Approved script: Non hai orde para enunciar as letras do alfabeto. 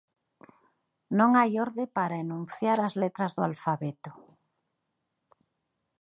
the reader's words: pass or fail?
pass